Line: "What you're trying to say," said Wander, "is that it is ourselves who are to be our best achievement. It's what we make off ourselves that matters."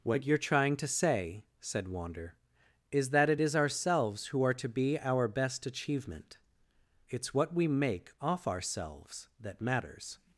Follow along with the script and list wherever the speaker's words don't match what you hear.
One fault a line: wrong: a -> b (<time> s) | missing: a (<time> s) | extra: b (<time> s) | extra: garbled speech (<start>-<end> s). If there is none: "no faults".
no faults